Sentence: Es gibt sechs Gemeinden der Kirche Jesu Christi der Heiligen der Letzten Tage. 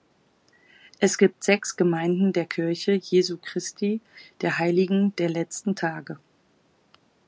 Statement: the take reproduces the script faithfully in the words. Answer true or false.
true